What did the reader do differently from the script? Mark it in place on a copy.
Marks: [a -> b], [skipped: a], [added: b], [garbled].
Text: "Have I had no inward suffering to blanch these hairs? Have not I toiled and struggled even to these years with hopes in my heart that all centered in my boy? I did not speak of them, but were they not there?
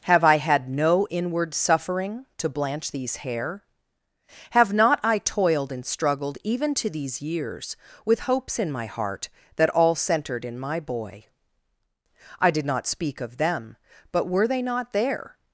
"Have I had no inward suffering to blanch these [hairs? -> hair] Have not I toiled and struggled even to these years with hopes in my heart that all centered in my boy? I did not speak of them, but were they not there?